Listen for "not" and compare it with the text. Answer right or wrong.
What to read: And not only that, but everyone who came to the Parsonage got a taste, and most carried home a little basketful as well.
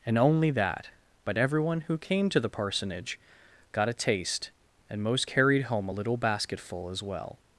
wrong